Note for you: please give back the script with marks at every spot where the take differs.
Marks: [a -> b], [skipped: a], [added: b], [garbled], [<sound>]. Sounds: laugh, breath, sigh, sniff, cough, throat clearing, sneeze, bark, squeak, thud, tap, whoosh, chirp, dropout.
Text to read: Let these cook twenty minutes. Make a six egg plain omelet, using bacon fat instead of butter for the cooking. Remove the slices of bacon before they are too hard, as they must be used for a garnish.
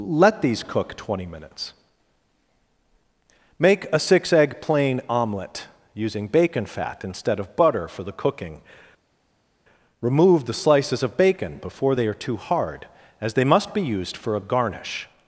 Let these cook twenty minutes. Make a six egg plain omelet, using bacon fat instead of butter for the cooking. Remove the slices of bacon before they are too hard, as they must be used for a garnish.